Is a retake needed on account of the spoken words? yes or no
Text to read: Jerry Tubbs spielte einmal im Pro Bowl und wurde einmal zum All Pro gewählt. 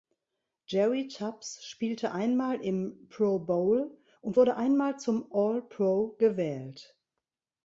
no